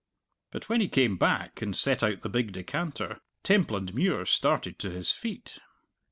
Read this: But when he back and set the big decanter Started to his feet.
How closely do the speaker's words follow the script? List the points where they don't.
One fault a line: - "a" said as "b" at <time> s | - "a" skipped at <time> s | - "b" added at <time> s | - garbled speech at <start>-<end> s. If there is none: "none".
- "came" added at 0.9 s
- "out" added at 2.0 s
- "Templandmuir" added at 3.4 s